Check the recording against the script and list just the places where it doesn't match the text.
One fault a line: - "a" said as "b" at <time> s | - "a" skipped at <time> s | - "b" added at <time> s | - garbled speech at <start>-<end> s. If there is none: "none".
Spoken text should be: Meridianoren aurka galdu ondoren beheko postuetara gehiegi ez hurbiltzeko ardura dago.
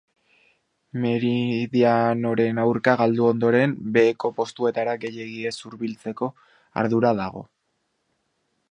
none